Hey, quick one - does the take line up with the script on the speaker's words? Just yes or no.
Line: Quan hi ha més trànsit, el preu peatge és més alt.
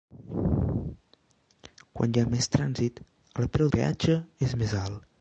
yes